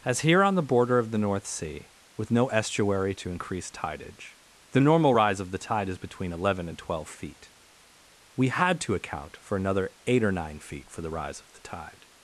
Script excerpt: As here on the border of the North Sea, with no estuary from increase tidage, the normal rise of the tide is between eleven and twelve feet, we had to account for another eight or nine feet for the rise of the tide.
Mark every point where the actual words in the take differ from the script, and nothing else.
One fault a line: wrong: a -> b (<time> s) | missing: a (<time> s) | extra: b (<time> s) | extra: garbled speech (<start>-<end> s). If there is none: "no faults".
wrong: from -> to (3.1 s)